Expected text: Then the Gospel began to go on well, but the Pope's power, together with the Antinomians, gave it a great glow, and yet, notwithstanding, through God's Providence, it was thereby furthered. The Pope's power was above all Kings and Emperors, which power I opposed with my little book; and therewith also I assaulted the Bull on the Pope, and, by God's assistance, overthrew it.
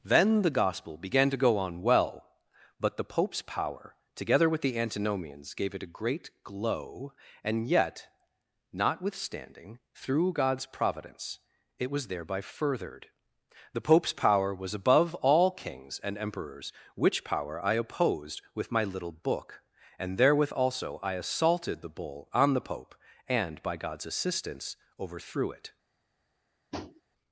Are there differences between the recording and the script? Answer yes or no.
no